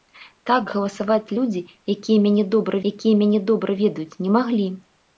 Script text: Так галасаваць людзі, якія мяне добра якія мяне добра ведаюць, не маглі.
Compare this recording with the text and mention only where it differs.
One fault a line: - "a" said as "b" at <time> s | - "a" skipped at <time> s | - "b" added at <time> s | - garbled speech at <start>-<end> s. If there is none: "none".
none